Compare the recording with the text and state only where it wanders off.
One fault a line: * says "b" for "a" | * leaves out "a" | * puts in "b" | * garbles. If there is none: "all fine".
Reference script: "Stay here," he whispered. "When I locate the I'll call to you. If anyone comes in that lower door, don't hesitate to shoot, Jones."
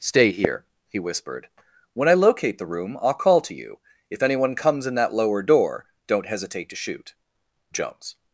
* puts in "room"